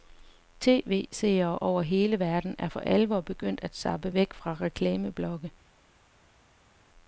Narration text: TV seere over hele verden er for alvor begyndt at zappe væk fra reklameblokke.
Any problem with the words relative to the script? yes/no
no